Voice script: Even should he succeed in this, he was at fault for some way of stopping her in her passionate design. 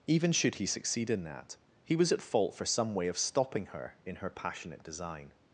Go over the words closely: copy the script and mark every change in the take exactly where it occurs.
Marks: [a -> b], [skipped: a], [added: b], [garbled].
Even should he succeed in [this, -> that] he was at fault for some way of stopping her in her passionate design.